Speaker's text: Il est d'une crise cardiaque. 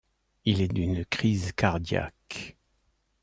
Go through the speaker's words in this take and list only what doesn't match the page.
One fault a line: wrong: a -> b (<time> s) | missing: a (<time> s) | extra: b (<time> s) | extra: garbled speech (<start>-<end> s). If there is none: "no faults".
no faults